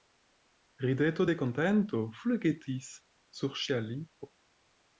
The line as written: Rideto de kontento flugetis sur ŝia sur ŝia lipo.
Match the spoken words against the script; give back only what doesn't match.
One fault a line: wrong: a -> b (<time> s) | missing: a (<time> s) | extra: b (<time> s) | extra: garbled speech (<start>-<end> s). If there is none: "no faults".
missing: sur ŝia (3.8 s)